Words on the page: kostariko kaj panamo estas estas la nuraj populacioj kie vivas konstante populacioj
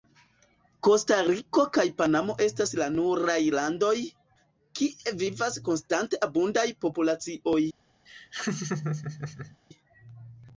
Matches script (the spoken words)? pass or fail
fail